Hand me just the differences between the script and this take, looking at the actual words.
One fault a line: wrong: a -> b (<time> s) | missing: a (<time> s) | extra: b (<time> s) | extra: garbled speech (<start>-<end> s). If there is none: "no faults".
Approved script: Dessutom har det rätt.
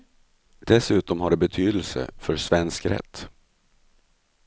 extra: betydelse för svensk (1.4 s)